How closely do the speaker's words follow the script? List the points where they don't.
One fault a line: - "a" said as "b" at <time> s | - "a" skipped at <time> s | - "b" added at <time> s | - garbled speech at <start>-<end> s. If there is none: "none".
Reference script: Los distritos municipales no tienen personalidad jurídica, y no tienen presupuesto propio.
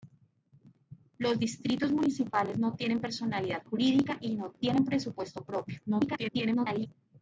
- garbled speech at 5.9-6.9 s